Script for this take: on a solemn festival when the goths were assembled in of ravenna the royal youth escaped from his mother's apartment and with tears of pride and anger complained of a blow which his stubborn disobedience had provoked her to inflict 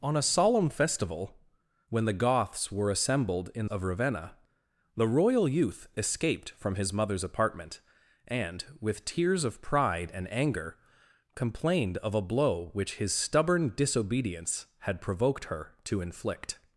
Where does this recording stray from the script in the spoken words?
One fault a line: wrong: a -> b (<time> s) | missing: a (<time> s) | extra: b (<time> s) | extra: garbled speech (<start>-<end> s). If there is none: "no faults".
no faults